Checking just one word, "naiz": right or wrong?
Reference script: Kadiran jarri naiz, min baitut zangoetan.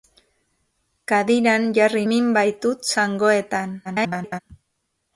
wrong